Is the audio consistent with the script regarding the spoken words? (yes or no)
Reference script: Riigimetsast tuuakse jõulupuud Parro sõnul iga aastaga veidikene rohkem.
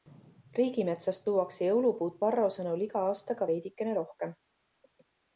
yes